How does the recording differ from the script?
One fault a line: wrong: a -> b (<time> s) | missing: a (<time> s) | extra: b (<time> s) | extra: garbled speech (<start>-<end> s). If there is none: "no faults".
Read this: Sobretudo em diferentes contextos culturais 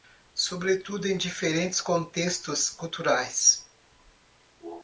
no faults